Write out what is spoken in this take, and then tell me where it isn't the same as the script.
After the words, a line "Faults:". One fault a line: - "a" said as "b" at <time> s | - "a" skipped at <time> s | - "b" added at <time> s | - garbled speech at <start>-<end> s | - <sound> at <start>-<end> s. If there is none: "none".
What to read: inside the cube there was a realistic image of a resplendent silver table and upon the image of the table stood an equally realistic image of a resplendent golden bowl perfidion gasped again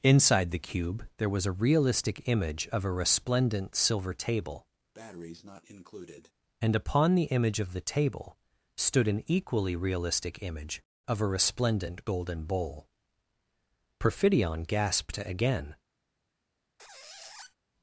inside the cube there was a realistic image of a resplendent silver table and upon the image of the table stood an equally realistic image of a resplendent golden bowl perfidion gasped again
Faults:
- breath at 4.9-6.3 s
- squeak at 16.8-17.5 s